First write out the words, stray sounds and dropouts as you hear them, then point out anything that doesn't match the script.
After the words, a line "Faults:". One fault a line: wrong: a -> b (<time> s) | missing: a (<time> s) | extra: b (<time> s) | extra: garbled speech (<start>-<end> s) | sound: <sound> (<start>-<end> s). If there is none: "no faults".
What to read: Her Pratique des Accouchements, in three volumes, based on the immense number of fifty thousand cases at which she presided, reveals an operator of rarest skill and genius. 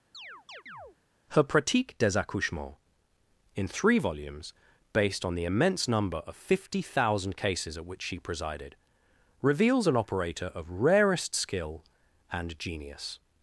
Her Pratique des Accouchements, in three volumes, based on the immense number of fifty thousand cases at which she presided, reveals an operator of rarest skill and genius.
Faults:
sound: chirp (0.1-1.0 s)